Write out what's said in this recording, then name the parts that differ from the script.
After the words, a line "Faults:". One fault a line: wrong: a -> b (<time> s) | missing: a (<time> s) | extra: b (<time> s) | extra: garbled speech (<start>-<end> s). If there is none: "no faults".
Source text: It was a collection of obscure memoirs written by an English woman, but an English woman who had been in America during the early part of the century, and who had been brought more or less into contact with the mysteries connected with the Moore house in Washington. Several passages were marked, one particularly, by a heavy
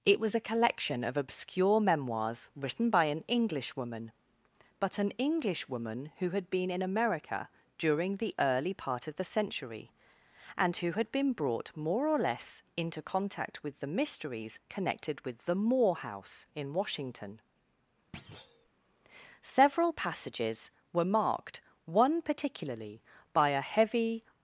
It was a collection of obscure memoirs written by an English woman, but an English woman who had been in America during the early part of the century, and who had been brought more or less into contact with the mysteries connected with the Moore house in Washington. Several passages were marked, one particularly, by a heavy
Faults:
no faults